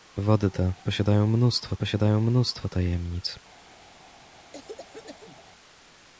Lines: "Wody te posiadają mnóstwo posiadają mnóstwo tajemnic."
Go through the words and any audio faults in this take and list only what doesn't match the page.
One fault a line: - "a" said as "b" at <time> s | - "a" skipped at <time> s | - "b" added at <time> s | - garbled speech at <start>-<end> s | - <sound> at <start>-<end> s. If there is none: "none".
- cough at 4.5-5.4 s